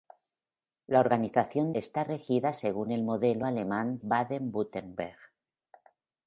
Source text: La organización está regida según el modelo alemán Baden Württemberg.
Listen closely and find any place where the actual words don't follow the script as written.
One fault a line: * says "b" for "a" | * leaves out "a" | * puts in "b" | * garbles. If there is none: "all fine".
all fine